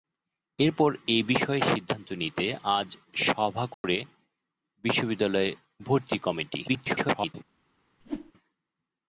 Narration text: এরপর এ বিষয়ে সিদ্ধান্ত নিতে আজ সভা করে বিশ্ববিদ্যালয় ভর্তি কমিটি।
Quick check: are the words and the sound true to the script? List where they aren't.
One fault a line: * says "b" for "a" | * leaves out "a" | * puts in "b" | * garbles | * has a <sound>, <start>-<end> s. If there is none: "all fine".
* has a dropout, 3.7-3.8 s
* garbles
* has a whoosh, 8.0-8.3 s